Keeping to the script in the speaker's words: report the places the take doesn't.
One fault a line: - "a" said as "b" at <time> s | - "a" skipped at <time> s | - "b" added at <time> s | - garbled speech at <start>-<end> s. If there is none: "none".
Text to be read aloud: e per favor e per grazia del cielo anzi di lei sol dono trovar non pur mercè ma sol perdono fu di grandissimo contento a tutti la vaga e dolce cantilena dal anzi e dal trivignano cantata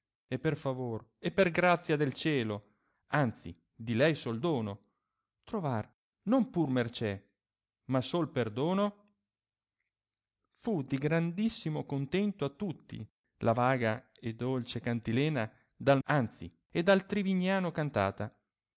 none